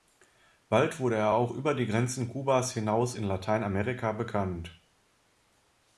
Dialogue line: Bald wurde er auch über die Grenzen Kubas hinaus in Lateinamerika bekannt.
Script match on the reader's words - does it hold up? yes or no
yes